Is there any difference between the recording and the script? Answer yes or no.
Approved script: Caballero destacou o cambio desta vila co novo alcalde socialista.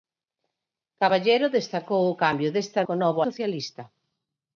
yes